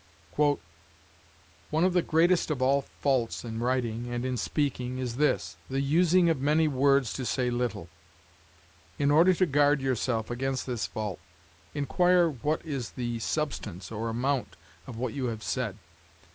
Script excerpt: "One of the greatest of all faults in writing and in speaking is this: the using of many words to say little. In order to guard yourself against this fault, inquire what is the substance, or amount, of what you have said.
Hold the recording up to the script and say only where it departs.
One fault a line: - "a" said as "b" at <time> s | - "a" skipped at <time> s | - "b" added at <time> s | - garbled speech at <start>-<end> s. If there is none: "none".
none